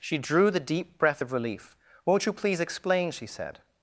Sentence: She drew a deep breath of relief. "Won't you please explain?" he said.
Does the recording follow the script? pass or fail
fail